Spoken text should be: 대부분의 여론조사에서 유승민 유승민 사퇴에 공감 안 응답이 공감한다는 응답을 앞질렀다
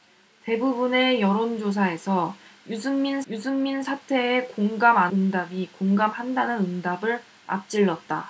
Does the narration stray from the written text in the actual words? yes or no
no